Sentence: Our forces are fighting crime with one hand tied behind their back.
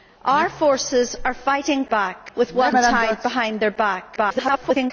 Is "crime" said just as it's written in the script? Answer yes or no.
no